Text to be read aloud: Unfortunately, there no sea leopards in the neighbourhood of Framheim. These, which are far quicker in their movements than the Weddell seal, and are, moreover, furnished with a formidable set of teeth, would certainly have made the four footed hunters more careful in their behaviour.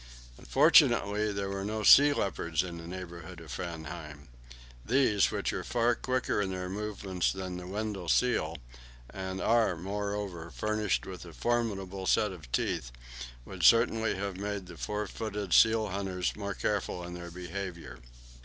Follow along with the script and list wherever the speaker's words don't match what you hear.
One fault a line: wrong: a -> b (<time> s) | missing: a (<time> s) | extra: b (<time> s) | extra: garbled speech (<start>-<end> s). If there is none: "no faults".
extra: were (1.5 s)
extra: seal (15.5 s)